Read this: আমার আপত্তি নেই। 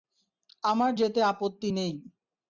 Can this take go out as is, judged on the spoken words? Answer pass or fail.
fail